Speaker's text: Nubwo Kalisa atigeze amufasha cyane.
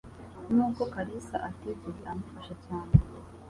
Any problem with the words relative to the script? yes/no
no